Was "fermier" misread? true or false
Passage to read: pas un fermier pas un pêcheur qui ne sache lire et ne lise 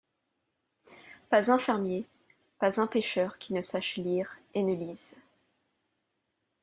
false